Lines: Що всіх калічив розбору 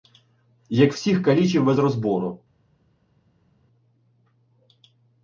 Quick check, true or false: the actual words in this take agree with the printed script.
false